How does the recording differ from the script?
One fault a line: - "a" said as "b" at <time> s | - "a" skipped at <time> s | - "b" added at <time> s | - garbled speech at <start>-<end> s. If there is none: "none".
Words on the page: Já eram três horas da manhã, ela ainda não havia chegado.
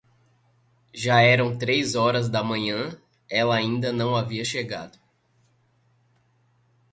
none